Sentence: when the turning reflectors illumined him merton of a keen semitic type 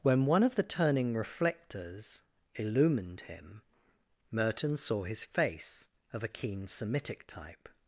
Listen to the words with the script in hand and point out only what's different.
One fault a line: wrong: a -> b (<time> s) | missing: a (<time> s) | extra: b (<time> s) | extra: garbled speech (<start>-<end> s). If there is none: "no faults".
extra: one of (0.2 s)
extra: saw his face (4.8 s)